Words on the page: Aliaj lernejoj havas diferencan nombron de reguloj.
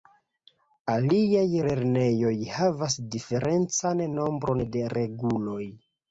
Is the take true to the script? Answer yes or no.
yes